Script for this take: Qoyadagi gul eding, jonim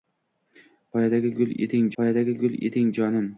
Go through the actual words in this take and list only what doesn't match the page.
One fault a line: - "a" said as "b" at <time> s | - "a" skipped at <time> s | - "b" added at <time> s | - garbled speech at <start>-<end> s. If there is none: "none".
- "qoyadagi gul eding" added at 2.0 s